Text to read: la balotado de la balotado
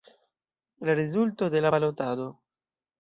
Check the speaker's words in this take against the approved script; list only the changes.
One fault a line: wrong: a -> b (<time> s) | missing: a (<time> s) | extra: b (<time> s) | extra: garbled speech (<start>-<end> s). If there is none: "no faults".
wrong: balotado -> rezulto (0.9 s)